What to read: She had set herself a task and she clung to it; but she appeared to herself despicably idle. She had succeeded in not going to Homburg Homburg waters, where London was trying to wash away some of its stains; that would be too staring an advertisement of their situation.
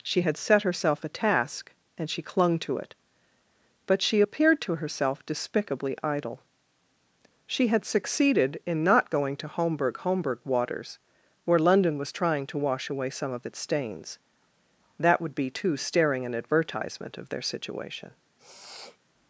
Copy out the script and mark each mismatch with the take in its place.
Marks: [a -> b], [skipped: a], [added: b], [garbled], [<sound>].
She had set herself a task and she clung to it; but she appeared to herself despicably idle. She had succeeded in not going to Homburg Homburg waters, where London was trying to wash away some of its stains; that would be too staring an advertisement of their situation. [sniff]